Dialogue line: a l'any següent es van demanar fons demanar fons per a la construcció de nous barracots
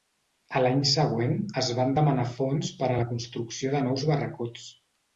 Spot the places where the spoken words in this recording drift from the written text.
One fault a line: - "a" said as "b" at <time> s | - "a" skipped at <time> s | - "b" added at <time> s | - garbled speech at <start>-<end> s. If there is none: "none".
- "demanar fons" skipped at 2.7 s